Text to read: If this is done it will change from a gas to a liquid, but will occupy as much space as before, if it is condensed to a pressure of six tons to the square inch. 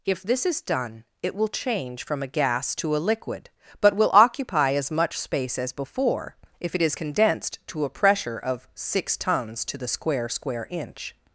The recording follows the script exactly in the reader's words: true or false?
false